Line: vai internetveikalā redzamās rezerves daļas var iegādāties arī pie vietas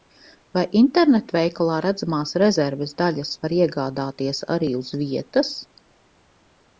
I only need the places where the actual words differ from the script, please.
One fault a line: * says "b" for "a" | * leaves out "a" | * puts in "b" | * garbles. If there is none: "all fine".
* says "uz" for "pie"